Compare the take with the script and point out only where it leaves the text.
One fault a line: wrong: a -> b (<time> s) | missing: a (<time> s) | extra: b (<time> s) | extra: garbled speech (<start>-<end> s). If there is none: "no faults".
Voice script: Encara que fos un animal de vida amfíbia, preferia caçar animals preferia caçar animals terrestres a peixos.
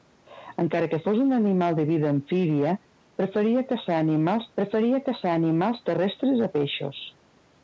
no faults